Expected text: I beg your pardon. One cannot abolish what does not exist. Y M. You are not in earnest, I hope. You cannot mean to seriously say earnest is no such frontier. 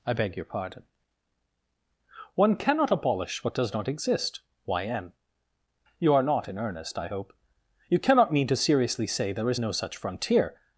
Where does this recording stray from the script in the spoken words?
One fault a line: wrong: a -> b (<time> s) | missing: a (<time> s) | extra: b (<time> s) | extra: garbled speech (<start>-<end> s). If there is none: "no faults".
wrong: earnest -> there (9.3 s)